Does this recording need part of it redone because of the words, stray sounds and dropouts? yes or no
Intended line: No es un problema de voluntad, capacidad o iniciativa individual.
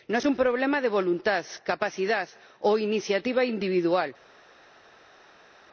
no